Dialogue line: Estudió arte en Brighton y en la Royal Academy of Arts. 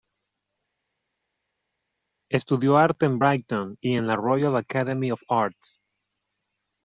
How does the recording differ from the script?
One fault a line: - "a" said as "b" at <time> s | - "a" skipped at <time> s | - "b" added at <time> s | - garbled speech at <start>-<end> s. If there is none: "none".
none